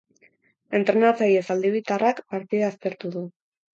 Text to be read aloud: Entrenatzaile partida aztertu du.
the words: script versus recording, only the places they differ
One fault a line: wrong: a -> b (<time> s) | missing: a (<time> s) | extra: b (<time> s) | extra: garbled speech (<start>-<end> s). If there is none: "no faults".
extra: zaldibartarrak (1.5 s)